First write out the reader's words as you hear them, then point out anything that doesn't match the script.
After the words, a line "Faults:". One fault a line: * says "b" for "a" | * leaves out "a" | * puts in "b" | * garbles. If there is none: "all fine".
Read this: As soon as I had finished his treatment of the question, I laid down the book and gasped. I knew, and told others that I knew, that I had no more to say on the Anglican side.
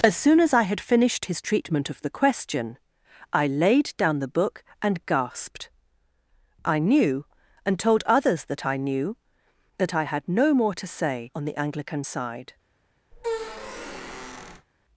As soon as I had finished his treatment of the question, I laid down the book and gasped. I knew, and told others that I knew, that I had no more to say on the Anglican side.
Faults:
all fine